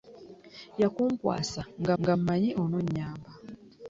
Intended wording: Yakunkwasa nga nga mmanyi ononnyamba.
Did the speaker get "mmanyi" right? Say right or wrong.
right